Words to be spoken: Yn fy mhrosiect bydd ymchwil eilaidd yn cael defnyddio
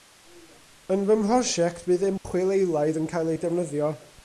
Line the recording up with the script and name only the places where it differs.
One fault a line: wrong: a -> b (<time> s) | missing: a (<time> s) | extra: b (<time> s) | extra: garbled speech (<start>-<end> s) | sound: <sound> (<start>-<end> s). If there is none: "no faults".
sound: dropout (2.2-2.2 s)
extra: ei (3.3 s)